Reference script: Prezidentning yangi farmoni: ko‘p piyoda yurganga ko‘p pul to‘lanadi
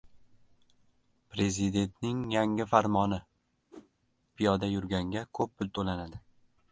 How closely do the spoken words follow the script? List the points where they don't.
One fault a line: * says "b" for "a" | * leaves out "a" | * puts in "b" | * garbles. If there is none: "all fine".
* leaves out "ko‘p"